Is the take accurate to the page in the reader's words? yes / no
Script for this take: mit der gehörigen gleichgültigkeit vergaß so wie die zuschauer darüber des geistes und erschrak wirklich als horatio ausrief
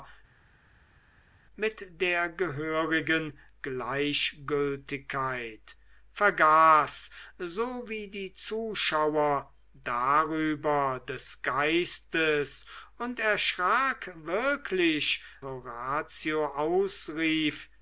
no